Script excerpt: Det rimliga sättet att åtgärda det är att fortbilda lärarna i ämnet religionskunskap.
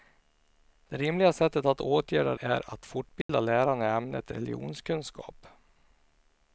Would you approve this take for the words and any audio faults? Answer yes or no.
no